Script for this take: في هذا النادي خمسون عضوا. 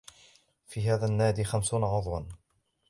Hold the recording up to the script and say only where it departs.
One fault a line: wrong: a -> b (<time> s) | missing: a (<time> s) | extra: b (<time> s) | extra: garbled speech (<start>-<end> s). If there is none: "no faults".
no faults